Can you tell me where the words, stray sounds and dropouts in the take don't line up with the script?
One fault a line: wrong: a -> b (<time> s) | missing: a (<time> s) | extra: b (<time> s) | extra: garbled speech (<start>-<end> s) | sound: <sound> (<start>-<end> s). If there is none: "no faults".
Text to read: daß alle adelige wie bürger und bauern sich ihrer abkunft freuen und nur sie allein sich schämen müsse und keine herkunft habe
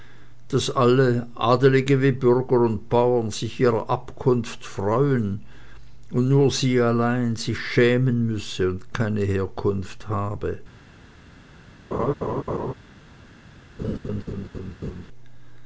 sound: laugh (11.9-12.7 s)
sound: laugh (13.8-15.1 s)